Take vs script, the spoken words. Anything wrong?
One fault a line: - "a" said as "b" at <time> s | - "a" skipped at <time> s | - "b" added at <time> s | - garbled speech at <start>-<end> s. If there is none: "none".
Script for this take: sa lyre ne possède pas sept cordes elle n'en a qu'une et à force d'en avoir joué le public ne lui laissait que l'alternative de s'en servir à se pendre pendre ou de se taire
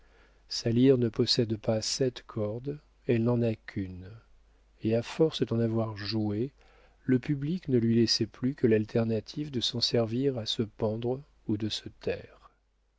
- "plus" added at 8.2 s
- "pendre" skipped at 11.2 s